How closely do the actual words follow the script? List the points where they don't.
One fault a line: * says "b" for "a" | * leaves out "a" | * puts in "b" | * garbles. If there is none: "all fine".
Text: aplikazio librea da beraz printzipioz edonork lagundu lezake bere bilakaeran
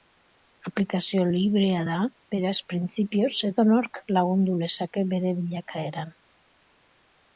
all fine